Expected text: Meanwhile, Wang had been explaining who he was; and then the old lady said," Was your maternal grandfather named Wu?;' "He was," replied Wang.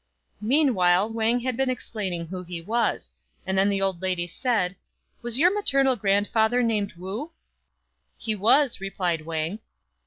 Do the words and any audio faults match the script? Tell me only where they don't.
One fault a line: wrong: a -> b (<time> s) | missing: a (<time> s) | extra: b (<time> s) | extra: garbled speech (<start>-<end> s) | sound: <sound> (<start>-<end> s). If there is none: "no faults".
no faults